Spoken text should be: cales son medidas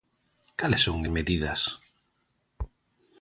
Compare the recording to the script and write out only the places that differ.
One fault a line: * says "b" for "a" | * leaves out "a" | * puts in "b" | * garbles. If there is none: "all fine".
all fine